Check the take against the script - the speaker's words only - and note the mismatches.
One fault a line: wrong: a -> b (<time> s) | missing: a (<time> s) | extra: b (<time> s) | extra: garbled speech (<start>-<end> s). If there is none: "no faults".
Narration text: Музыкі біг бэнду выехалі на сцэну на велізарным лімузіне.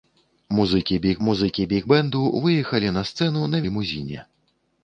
extra: музыкі біг (1.3 s)
missing: велізарным (3.6 s)